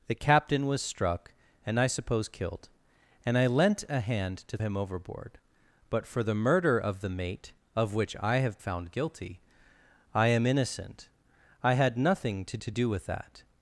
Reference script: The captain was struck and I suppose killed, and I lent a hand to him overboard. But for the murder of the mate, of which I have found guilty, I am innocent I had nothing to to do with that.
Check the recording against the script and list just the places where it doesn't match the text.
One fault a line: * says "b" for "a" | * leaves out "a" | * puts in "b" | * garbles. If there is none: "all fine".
all fine